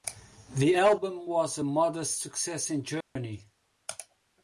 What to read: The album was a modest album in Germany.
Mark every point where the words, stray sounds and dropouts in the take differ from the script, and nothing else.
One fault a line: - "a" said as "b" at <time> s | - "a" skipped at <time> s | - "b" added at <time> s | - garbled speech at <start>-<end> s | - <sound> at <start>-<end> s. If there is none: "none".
- "album" said as "success" at 2.2 s
- dropout at 3.0-3.2 s